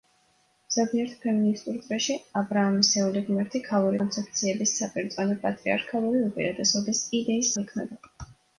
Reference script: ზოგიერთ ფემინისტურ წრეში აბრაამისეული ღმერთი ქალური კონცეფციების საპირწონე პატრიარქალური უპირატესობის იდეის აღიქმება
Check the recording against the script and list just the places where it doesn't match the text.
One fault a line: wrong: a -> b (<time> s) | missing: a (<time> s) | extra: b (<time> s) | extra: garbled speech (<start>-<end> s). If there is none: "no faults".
no faults